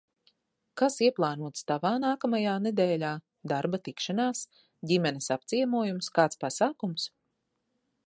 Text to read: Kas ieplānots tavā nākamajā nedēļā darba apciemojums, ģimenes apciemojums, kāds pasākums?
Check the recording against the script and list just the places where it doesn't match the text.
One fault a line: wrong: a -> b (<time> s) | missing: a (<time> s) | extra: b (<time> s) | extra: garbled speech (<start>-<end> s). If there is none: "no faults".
wrong: apciemojums -> tikšanās (3.9 s)